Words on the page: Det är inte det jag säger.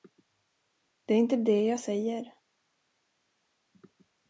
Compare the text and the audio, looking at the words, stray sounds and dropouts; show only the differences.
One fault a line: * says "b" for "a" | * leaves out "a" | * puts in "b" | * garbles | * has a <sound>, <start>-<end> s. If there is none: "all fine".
all fine